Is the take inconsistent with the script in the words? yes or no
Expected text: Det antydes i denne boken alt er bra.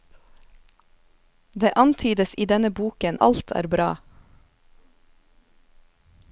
no